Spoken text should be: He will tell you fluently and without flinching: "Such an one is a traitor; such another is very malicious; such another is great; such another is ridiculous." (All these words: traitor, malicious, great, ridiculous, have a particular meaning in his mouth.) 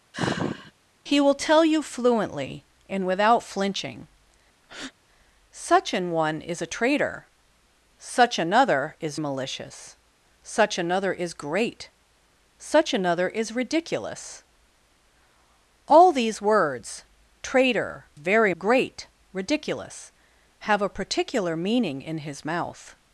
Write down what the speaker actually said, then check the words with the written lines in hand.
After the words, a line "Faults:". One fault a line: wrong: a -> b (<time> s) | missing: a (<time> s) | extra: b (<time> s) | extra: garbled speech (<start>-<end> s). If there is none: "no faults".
He will tell you fluently and without flinching: "Such an one is a traitor; such another is malicious; such another is great; such another is ridiculous." (All these words: traitor, very, great, ridiculous, have a particular meaning in his mouth.)
Faults:
missing: very (9.2 s)
wrong: malicious -> very (18.1 s)